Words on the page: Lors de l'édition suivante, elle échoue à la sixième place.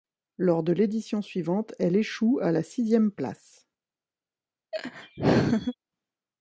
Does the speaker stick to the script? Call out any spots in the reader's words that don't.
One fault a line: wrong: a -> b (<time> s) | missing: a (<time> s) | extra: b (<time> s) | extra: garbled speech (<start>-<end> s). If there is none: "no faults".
no faults